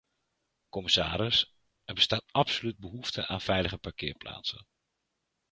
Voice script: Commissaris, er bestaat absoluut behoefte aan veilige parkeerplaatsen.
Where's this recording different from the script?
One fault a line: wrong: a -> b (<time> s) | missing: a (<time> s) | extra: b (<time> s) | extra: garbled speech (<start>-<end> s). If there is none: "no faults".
no faults